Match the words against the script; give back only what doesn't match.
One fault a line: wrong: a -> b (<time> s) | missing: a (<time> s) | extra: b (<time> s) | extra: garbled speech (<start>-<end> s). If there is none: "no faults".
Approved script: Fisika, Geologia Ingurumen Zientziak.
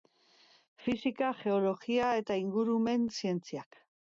extra: eta (2.2 s)